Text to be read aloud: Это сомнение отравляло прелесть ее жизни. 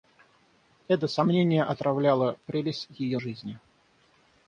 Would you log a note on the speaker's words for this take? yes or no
no